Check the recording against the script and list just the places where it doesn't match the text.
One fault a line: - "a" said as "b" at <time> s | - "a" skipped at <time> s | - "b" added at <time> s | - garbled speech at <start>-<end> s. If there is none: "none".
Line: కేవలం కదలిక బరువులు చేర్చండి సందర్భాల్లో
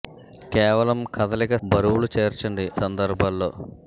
none